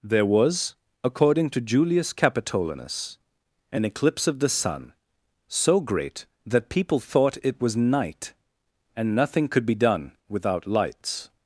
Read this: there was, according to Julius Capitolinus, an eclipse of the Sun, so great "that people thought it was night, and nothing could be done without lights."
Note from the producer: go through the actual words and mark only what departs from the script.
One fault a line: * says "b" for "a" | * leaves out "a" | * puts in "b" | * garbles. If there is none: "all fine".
all fine